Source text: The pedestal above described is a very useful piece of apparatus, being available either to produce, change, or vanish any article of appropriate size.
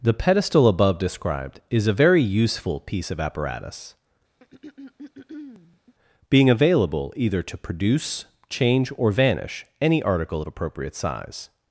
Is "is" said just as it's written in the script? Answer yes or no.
yes